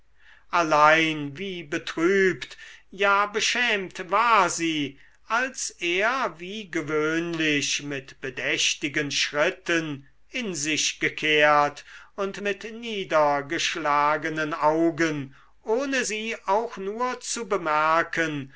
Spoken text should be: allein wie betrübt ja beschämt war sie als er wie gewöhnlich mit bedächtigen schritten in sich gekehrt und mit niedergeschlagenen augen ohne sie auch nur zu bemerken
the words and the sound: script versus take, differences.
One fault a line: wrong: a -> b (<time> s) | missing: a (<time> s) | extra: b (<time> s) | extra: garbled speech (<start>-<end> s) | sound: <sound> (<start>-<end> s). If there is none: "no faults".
no faults